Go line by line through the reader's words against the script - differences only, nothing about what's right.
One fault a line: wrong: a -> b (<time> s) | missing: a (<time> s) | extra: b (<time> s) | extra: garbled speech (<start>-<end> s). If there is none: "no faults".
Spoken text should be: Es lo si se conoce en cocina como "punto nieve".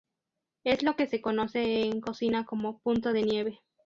wrong: si -> que (0.9 s)
extra: de (3.1 s)